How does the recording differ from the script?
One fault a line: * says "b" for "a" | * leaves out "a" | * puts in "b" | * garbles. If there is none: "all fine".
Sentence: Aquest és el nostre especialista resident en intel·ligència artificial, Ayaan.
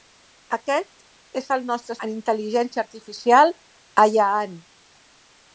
* leaves out "especialista resident"